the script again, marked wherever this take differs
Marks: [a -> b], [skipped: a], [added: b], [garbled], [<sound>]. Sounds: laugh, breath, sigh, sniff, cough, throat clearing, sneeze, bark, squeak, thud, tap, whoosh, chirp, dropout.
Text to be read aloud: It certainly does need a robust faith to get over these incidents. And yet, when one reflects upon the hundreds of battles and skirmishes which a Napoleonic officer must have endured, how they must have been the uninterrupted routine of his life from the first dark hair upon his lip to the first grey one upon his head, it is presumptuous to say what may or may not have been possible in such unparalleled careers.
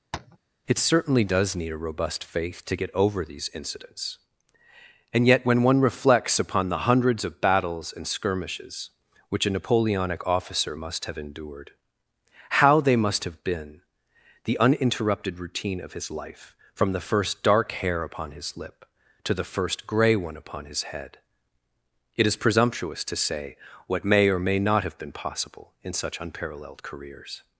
[tap] It certainly does need a robust faith to get over these incidents. And yet, when one reflects upon the hundreds of battles and skirmishes which a Napoleonic officer must have endured, how they must have been the uninterrupted routine of his life from the first dark hair upon his lip to the first grey one upon his head, it is presumptuous to say what may or may not have been possible in such unparalleled careers.